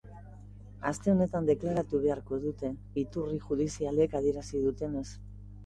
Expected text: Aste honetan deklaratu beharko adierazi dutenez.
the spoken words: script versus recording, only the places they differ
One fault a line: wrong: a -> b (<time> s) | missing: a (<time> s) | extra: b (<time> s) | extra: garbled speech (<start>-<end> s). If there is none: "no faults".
extra: dute iturri judizialek (2.5 s)